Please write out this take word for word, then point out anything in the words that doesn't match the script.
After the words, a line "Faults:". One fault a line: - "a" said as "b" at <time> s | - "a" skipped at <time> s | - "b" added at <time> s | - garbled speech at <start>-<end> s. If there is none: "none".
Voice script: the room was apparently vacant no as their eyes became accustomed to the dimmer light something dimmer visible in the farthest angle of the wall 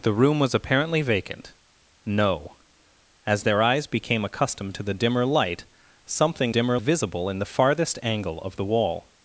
the room was apparently vacant no as their eyes became accustomed to the dimmer light something dimmer visible in the farthest angle of the wall
Faults:
none